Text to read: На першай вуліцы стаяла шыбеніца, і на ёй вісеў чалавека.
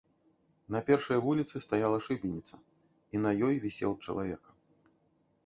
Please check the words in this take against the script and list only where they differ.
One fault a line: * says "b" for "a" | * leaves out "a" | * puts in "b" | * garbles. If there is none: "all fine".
all fine